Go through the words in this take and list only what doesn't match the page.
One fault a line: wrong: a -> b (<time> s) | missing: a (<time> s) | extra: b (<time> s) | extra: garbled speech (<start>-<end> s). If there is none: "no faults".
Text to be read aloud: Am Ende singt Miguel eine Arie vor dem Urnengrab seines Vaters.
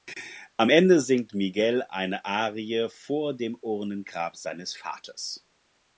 no faults